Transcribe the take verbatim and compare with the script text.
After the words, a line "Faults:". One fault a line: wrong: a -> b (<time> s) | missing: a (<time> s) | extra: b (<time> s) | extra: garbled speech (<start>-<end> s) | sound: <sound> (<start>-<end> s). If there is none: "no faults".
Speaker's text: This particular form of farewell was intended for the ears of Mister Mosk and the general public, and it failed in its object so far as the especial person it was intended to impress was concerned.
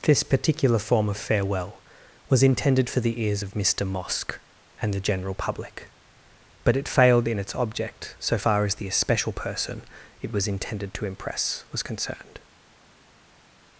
This particular form of farewell was intended for the ears of Mister Mosk and the general public, but it failed in its object so far as the especial person it was intended to impress was concerned.
Faults:
wrong: and -> but (6.6 s)